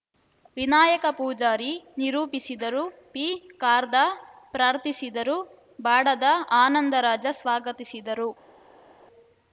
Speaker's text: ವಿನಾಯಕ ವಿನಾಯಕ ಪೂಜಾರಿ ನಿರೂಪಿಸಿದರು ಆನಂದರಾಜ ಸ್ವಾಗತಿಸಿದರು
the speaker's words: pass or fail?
fail